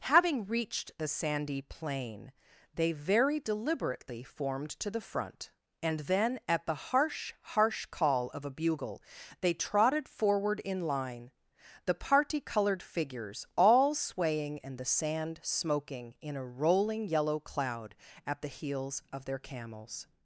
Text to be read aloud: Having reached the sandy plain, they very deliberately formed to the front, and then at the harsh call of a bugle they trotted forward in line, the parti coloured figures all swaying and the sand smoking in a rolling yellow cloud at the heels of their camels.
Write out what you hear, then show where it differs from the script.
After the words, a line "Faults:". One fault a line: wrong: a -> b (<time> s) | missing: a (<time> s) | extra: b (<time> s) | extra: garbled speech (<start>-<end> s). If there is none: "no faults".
Having reached the sandy plain, they very deliberately formed to the front, and then at the harsh harsh call of a bugle they trotted forward in line, the parti coloured figures all swaying and the sand smoking in a rolling yellow cloud at the heels of their camels.
Faults:
extra: harsh (7.4 s)